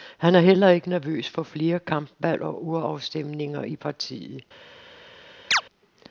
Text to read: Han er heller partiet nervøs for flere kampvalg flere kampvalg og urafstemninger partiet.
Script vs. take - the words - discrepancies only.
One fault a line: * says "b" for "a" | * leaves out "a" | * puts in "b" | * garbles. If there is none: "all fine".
* says "ikke" for "partiet"
* leaves out "flere kampvalg"
* puts in "i"